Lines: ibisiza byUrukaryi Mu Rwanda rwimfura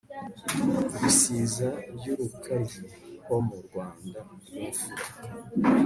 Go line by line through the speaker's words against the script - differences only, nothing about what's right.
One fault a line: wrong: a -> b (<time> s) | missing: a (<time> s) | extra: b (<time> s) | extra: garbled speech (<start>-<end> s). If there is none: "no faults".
extra: Ho (3.2 s)